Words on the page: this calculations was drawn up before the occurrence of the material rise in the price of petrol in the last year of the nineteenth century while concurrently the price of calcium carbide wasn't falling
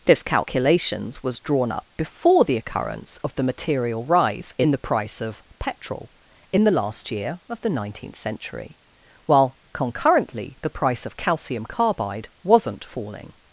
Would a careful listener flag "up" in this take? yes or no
no